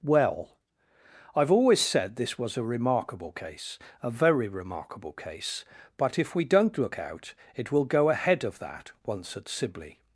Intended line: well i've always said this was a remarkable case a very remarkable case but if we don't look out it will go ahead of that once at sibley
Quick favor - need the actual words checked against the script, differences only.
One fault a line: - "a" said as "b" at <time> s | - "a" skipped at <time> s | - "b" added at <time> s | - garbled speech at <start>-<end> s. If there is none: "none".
none